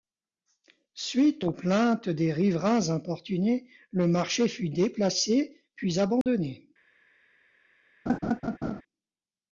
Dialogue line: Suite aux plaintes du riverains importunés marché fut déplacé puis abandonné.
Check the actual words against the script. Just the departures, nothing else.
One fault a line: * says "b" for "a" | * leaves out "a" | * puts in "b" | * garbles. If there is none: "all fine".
* says "des" for "du"
* puts in "le"